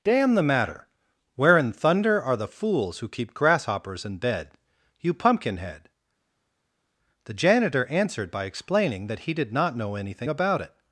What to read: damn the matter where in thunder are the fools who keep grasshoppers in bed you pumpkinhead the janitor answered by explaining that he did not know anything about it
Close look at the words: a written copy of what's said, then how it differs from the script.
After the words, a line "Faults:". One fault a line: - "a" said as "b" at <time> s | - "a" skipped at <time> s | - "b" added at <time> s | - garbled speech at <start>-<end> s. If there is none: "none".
damn the matter where in thunder are the fools who keep grasshoppers in bed you pumpkinhead the janitor answered by explaining that he did not know anything about it
Faults:
none